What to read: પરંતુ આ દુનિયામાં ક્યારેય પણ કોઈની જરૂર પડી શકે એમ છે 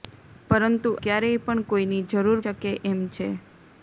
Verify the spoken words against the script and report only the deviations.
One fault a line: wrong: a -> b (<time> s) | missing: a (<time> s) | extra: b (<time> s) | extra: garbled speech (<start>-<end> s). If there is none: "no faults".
missing: આ દુનિયામાં (0.9 s)
missing: પડી (2.4 s)